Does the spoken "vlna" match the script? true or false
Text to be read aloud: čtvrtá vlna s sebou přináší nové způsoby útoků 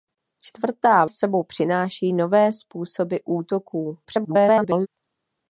false